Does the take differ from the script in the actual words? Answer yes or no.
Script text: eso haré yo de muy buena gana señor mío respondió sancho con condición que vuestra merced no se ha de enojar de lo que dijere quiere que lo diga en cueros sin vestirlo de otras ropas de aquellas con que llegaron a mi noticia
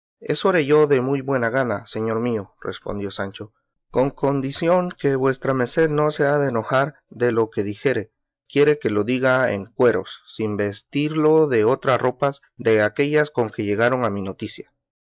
no